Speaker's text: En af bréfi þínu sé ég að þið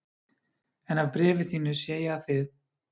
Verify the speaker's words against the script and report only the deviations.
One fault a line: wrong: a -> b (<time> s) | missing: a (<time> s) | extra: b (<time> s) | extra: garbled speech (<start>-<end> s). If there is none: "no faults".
no faults